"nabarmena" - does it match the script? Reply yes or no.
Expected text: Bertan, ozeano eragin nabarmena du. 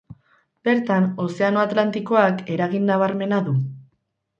yes